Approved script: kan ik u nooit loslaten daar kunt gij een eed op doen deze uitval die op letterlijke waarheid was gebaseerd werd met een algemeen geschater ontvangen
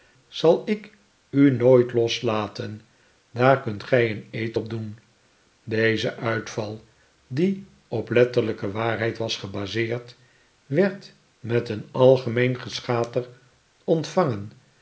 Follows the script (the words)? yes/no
no